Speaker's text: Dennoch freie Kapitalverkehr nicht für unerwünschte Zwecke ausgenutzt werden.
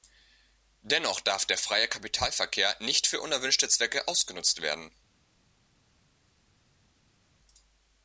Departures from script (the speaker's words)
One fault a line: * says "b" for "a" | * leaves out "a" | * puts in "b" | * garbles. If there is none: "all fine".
* puts in "darf der"